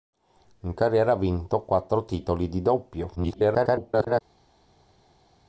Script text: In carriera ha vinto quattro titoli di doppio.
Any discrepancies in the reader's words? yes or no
yes